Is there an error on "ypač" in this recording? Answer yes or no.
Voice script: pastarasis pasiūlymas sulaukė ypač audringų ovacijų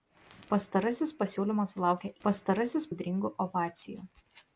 yes